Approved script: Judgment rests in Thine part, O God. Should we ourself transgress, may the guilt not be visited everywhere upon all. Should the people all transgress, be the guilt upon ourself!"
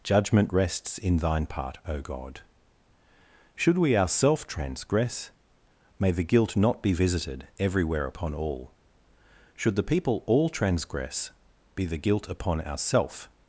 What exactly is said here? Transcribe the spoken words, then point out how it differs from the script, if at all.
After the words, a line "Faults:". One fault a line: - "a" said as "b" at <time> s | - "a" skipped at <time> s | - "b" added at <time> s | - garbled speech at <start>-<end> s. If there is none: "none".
Judgment rests in Thine part, O God. Should we ourself transgress, may the guilt not be visited everywhere upon all. Should the people all transgress, be the guilt upon ourself!"
Faults:
none